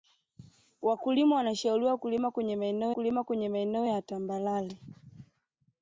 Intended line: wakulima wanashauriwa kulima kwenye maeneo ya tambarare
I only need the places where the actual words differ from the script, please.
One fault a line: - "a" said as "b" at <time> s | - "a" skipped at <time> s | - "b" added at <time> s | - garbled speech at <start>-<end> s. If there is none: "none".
- "kulima kwenye maeneo" added at 2.9 s